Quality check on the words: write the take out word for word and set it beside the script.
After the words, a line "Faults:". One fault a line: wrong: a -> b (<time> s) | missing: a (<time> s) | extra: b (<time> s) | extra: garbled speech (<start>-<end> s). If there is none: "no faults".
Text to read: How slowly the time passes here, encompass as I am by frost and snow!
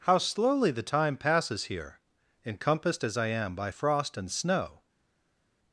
How slowly the time passes here, encompassed as I am by frost and snow!
Faults:
wrong: encompass -> encompassed (2.4 s)